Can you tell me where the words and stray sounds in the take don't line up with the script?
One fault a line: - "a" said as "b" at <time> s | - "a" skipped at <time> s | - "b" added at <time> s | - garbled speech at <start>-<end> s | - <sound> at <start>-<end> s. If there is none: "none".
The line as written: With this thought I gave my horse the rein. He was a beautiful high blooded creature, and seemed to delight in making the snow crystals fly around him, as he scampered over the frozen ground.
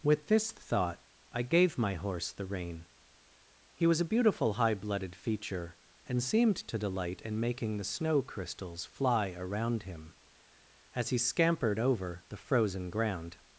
- "creature" said as "feature" at 5.1 s